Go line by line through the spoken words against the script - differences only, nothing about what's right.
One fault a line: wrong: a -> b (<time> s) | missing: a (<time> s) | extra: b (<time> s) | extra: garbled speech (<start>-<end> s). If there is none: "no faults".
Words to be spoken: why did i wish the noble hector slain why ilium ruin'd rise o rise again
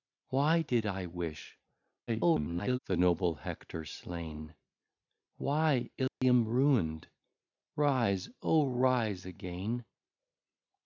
extra: garbled speech (2.1-2.8 s)